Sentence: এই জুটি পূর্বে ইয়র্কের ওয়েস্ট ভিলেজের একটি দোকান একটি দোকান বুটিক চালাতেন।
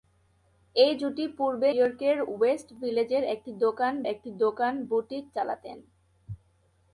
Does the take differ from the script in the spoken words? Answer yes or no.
no